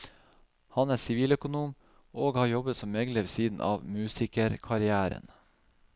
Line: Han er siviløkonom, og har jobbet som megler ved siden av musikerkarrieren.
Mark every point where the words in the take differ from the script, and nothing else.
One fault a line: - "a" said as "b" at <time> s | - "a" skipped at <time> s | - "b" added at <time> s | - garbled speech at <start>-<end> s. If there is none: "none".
none